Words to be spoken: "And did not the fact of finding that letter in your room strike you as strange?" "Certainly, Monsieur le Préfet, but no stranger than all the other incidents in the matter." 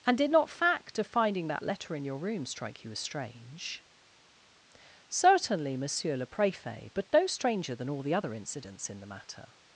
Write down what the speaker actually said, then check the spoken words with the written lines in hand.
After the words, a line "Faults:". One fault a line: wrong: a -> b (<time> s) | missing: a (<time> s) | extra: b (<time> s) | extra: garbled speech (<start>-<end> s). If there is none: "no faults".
"And did not fact of finding that letter in your room strike you as strange?" "Certainly, Monsieur le Préfet, but no stranger than all the other incidents in the matter."
Faults:
missing: the (0.5 s)